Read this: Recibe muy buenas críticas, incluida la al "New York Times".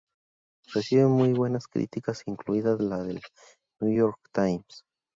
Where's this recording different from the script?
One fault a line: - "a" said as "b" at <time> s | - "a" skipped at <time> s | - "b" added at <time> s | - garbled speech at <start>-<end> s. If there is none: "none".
- "al" said as "del" at 3.0 s